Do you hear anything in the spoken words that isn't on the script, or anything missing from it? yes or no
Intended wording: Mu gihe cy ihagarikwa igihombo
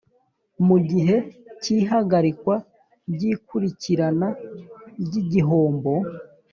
yes